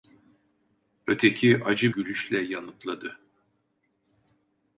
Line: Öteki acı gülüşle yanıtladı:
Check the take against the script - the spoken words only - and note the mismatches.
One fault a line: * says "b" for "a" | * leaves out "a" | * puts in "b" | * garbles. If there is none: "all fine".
all fine